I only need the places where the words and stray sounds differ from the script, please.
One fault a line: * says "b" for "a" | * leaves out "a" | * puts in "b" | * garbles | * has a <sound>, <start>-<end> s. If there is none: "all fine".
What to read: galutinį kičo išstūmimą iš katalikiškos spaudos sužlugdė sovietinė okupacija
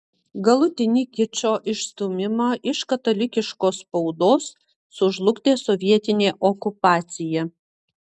all fine